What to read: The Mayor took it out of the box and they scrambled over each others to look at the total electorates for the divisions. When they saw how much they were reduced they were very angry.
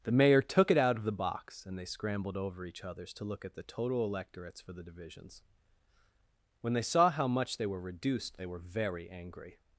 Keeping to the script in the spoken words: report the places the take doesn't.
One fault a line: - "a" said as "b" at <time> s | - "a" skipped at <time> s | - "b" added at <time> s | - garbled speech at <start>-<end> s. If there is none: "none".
none